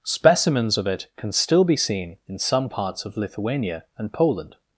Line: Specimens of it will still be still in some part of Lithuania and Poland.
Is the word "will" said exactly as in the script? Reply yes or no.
no